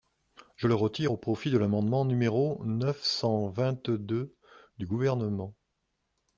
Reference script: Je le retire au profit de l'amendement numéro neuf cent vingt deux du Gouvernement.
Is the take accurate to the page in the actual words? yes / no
yes